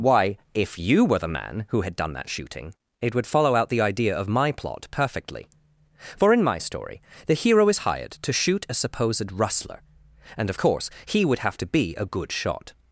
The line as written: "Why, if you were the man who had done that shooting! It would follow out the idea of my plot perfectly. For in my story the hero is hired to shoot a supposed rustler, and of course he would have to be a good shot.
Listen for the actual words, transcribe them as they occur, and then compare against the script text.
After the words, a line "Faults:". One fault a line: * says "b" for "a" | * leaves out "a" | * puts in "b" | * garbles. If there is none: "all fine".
"Why, if you were the man who had done that shooting! It would follow out the idea of my plot perfectly. For in my story the hero is hired to shoot a supposed rustler, and of course he would have to be a good shot.
Faults:
all fine